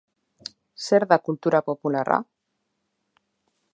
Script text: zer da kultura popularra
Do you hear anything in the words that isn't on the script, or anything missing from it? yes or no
no